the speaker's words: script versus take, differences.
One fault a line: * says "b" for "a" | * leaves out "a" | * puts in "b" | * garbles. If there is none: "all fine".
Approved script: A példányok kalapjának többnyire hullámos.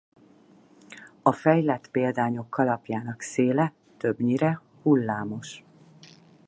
* puts in "fejlett"
* puts in "széle"